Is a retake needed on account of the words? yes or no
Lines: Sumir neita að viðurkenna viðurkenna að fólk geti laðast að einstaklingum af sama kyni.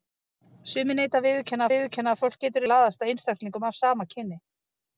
no